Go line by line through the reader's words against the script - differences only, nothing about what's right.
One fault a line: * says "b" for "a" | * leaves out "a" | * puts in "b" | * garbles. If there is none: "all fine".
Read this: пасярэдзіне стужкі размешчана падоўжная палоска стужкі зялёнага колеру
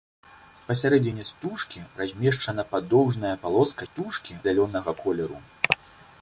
all fine